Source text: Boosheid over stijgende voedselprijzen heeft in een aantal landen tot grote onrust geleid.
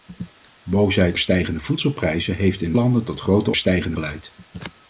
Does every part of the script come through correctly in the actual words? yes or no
no